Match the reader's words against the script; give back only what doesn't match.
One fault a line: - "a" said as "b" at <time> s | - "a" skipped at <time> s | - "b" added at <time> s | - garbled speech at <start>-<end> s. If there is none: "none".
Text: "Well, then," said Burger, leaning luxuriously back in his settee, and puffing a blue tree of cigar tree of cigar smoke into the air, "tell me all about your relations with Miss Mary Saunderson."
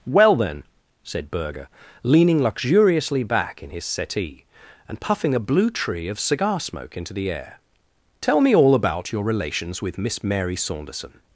- "tree of cigar" skipped at 6.6 s